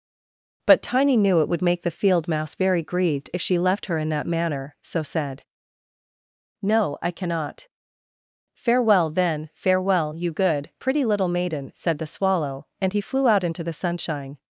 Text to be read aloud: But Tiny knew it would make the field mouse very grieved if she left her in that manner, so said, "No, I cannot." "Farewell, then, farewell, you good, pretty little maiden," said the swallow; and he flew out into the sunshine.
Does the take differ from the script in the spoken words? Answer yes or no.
no